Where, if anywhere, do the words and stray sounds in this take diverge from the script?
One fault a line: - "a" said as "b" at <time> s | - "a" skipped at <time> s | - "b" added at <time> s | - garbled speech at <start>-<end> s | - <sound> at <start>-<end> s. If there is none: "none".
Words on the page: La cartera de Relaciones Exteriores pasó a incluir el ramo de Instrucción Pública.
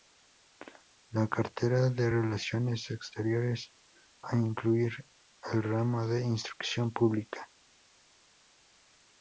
- "pasó" skipped at 3.7 s